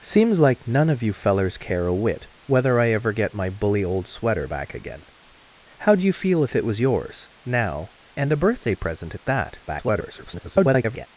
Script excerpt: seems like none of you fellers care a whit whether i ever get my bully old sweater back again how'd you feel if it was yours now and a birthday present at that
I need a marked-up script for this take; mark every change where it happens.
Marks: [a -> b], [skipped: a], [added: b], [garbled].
seems like none of you fellers care a whit whether i ever get my bully old sweater back again how'd you feel if it was yours now and a birthday present at that [garbled]